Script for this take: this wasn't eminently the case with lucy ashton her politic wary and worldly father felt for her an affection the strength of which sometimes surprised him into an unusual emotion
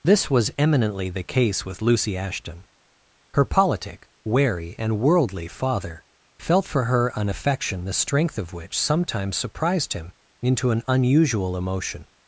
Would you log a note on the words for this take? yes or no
yes